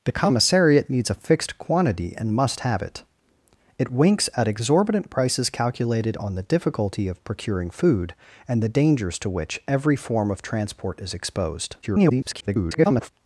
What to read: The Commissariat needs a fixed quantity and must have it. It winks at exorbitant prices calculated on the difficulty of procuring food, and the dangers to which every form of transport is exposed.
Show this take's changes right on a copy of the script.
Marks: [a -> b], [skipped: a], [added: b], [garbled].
The Commissariat needs a fixed quantity and must have it. It winks at exorbitant prices calculated on the difficulty of procuring food, and the dangers to which every form of transport is exposed. [garbled]